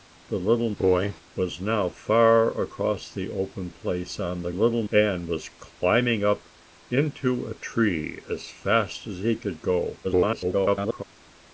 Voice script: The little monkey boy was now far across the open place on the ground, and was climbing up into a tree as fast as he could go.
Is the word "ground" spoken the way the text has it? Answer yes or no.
no